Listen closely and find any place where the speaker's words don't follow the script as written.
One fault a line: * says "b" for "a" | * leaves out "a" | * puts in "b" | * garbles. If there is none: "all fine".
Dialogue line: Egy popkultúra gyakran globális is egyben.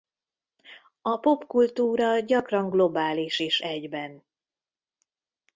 * says "A" for "Egy"